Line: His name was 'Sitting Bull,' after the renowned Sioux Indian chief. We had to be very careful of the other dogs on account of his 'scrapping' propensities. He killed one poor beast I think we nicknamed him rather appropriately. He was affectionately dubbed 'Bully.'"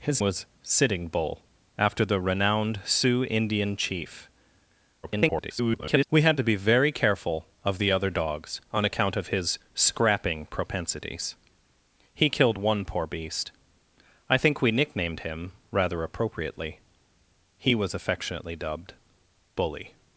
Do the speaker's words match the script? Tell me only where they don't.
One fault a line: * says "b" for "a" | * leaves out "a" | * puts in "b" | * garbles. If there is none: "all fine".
* leaves out "name"
* garbles